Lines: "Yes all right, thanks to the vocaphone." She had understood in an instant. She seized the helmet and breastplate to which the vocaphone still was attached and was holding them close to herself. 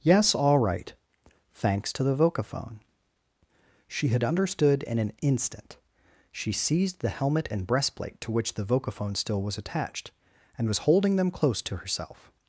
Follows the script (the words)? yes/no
yes